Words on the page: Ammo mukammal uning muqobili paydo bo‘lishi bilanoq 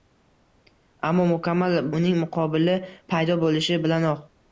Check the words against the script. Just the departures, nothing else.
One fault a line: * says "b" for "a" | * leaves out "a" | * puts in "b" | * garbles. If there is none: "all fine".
all fine